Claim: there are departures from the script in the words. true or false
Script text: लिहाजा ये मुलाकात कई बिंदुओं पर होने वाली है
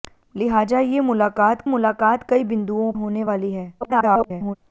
true